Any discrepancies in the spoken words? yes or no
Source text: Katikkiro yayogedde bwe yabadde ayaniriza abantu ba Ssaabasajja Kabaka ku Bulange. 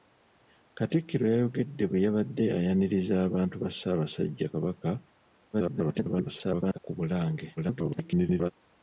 yes